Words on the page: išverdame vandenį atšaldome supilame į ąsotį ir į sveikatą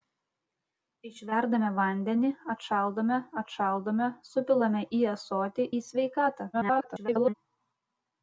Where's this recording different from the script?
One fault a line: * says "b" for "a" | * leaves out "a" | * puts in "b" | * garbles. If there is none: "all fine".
* puts in "atšaldome"
* leaves out "ir"
* garbles